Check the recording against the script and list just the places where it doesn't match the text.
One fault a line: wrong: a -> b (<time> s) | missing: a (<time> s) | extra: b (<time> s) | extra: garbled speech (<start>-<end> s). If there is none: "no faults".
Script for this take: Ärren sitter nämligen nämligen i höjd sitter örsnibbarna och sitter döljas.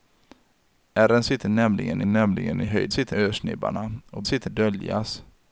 no faults